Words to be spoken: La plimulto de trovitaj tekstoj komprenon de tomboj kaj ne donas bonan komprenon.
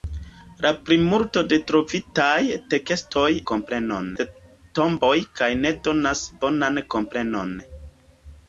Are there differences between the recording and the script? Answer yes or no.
no